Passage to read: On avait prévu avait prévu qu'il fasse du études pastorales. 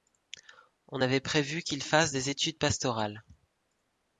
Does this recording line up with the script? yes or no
no